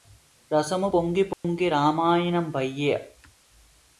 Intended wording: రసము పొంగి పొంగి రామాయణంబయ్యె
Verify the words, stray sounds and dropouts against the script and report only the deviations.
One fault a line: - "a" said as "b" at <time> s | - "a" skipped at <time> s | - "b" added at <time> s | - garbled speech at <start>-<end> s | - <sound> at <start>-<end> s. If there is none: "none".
- dropout at 1.3-1.4 s